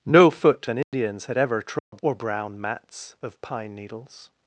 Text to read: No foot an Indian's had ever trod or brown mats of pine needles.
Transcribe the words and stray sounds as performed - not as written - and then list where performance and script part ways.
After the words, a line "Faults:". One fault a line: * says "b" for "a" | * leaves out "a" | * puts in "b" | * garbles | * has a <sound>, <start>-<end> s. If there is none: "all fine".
No foot an Indian's had ever trod or brown mats of pine needles.
Faults:
* has a dropout, 0.8-0.9 s
* has a dropout, 1.8-1.9 s